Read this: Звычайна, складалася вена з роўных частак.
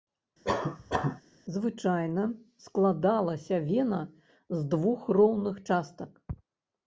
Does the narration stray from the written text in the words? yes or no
yes